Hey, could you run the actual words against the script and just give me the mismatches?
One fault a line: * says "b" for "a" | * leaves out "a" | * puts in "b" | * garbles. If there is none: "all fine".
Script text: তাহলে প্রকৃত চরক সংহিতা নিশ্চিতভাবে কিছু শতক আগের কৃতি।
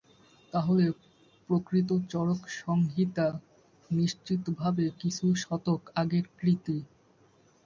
all fine